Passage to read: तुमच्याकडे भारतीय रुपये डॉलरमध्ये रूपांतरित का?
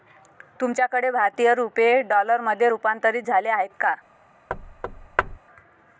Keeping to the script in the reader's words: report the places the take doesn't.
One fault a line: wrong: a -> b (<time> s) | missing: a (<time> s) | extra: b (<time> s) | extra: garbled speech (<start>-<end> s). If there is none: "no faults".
extra: झाले आहेत (3.2 s)